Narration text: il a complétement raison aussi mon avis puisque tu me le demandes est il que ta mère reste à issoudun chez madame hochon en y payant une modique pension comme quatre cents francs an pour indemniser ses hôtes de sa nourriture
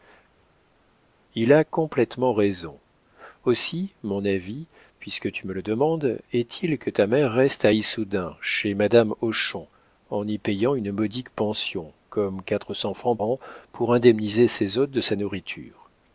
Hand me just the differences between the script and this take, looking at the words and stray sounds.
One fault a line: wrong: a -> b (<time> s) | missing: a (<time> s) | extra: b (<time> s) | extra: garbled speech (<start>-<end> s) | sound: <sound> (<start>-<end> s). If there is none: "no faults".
no faults